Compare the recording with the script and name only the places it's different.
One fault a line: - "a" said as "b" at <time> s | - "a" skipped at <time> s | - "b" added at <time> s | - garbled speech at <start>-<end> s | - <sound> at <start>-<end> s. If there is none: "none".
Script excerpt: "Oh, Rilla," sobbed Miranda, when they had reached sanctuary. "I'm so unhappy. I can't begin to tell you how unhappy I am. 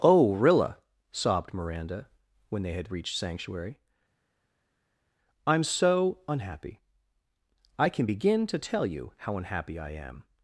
- "can't" said as "can" at 7.9 s